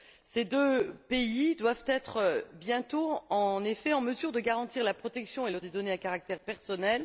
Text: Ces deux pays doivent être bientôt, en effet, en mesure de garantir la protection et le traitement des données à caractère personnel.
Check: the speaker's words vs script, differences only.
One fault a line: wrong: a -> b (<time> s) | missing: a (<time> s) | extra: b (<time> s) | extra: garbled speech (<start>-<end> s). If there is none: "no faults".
missing: traitement (5.6 s)